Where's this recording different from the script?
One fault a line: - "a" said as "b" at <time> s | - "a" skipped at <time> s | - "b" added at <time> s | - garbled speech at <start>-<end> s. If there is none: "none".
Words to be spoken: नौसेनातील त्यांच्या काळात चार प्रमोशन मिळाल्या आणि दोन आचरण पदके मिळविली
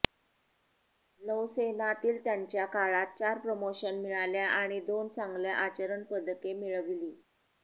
- "चांगल्या" added at 5.1 s